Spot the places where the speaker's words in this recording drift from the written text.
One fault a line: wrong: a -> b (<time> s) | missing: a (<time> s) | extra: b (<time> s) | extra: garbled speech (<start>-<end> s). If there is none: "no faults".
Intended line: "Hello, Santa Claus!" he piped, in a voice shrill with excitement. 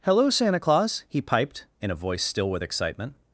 wrong: shrill -> still (2.2 s)